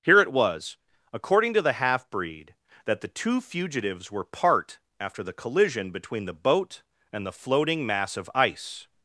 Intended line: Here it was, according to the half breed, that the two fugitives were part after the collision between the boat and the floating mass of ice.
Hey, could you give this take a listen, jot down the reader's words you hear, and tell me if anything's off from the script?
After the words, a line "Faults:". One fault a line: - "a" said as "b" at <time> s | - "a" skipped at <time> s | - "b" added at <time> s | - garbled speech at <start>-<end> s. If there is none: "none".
Here it was, according to the half breed, that the two fugitives were part after the collision between the boat and the floating mass of ice.
Faults:
none